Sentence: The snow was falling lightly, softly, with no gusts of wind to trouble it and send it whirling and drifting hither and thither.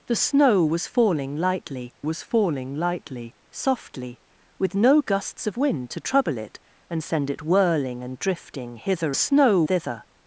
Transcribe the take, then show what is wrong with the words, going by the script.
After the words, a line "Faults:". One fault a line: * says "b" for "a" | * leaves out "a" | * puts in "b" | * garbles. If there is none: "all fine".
The snow was falling lightly was falling lightly, softly, with no gusts of wind to trouble it and send it whirling and drifting hither snow thither.
Faults:
* puts in "was falling lightly"
* says "snow" for "and"